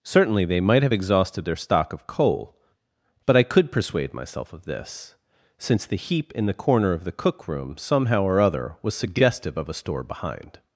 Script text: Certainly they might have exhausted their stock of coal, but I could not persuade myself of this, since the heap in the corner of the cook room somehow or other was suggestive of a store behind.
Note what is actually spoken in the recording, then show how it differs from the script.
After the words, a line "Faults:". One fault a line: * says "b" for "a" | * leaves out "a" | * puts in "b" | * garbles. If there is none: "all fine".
Certainly they might have exhausted their stock of coal, but I could persuade myself of this, since the heap in the corner of the cook room somehow or other was suggestive of a store behind.
Faults:
* leaves out "not"